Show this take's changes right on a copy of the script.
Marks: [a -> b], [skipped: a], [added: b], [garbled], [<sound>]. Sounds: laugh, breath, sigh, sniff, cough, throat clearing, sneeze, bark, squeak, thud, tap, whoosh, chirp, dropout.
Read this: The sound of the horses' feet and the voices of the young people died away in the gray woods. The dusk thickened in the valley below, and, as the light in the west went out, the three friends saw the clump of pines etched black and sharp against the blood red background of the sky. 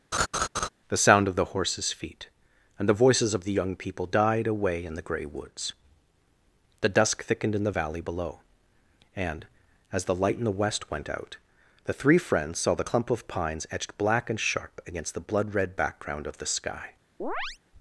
[laugh] The sound of the horses' feet and the voices of the young people died away in the gray woods. The dusk thickened in the valley below, and, as the light in the west went out, the three friends saw the clump of pines etched black and sharp against the blood red background of the sky. [chirp]